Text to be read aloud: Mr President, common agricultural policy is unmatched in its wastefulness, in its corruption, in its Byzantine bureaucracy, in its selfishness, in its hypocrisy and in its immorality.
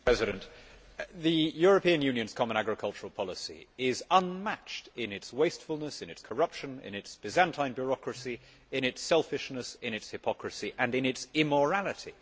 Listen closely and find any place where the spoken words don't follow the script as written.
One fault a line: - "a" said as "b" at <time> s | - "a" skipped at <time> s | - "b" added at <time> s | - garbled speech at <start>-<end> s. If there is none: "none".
- "the European Union's" added at 1.1 s